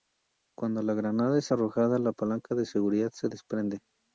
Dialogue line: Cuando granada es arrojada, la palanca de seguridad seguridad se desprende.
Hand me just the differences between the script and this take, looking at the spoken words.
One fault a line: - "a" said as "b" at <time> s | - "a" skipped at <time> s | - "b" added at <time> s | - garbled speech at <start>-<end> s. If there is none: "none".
- "la" added at 0.8 s
- "seguridad" skipped at 3.1 s